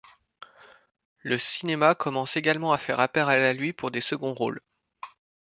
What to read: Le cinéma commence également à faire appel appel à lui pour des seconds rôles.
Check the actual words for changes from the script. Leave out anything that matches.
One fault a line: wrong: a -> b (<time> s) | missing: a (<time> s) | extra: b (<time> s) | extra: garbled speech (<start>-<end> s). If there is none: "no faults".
missing: appel (3.3 s)